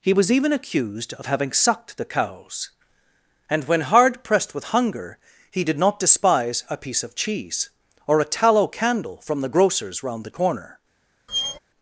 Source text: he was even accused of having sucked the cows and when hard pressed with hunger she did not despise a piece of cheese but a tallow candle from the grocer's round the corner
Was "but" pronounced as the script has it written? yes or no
no